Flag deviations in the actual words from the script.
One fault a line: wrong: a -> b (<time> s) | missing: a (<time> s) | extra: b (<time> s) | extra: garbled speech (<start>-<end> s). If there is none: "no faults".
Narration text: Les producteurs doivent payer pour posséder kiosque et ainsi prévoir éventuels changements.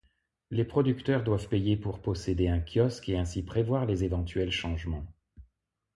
extra: un (2.5 s)
extra: les (3.9 s)